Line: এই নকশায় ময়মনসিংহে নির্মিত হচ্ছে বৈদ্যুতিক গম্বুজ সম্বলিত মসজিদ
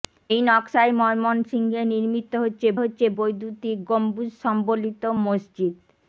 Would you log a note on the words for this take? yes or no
yes